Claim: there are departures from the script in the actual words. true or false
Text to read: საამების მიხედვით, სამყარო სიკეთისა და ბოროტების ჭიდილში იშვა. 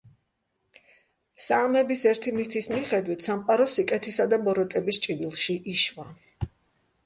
true